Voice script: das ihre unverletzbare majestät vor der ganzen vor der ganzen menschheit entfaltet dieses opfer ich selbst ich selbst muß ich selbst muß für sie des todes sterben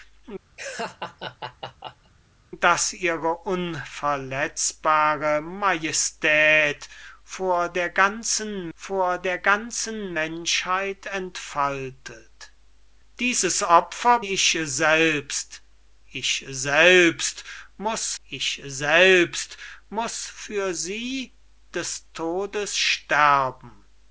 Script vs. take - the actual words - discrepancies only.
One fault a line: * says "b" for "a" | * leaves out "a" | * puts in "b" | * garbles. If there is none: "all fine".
all fine